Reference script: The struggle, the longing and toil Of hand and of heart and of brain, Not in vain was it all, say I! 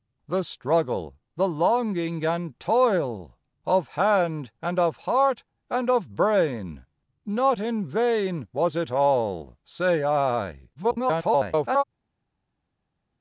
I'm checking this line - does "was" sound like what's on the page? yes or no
yes